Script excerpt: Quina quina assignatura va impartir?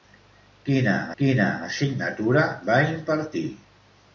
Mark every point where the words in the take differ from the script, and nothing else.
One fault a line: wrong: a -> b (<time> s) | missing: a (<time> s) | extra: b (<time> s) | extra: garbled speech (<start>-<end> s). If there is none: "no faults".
no faults